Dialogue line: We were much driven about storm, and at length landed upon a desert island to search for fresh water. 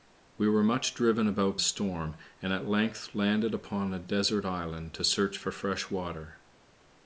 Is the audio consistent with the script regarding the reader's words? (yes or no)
yes